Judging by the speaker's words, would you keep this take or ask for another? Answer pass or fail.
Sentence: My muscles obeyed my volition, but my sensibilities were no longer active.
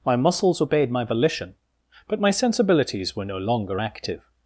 pass